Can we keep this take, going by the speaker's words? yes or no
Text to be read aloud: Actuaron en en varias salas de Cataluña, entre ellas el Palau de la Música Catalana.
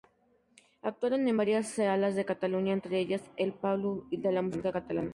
no